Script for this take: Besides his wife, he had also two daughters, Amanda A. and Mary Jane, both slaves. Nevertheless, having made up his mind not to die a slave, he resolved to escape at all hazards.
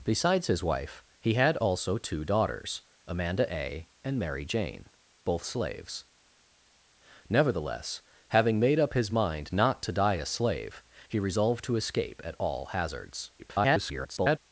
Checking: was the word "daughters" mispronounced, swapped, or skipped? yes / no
no